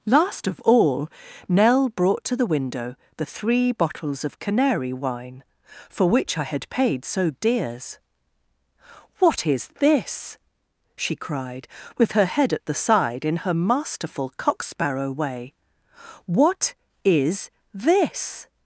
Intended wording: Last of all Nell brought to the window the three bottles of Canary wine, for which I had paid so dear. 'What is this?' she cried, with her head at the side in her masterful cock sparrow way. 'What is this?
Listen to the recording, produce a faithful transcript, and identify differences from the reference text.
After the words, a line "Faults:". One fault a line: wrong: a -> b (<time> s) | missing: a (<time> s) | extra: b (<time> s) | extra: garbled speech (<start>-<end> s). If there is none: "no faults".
Last of all Nell brought to the window the three bottles of Canary wine, for which I had paid so dears. 'What is this?' she cried, with her head at the side in her masterful cock sparrow way. 'What is this?
Faults:
wrong: dear -> dears (7.3 s)